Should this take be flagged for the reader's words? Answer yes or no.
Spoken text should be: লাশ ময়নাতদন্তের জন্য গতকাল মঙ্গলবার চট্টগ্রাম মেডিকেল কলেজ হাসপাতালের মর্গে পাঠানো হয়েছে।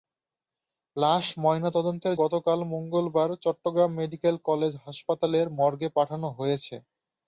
yes